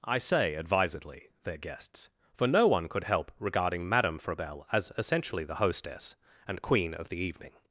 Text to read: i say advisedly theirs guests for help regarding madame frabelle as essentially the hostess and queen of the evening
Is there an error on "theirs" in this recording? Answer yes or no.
yes